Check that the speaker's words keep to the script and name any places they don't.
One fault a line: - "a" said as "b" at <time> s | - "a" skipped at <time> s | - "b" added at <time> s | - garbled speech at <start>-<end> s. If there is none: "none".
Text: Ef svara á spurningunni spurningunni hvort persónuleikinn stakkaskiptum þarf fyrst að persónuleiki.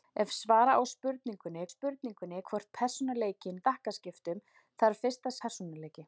none